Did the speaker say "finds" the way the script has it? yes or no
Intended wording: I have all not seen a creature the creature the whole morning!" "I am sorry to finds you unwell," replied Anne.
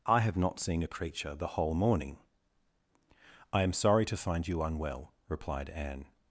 no